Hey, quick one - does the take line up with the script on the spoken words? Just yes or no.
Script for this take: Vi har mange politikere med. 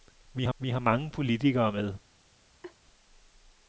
no